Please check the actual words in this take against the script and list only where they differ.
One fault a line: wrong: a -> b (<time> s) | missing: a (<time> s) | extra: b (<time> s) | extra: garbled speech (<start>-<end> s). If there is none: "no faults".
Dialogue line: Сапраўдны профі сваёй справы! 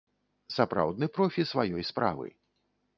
no faults